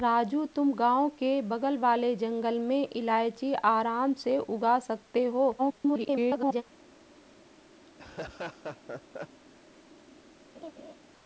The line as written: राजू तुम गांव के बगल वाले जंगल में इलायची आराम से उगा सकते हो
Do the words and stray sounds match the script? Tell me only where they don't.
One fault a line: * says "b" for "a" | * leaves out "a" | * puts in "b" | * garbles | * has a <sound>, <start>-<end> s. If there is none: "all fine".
* garbles
* has a laugh, 7.9-9.4 s
* has a laugh, 10.5-10.9 s